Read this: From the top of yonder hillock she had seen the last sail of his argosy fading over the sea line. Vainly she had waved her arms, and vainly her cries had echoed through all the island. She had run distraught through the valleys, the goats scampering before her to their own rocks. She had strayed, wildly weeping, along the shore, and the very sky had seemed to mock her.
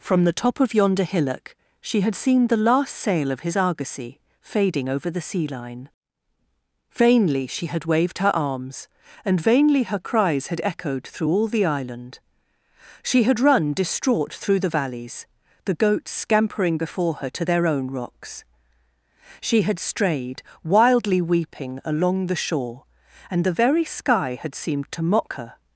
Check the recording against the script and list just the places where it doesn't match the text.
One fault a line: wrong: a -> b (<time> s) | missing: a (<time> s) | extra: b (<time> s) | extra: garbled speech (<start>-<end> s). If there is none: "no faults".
no faults